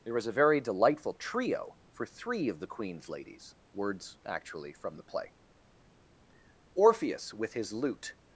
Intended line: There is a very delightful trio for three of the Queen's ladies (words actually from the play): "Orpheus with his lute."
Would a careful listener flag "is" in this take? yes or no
yes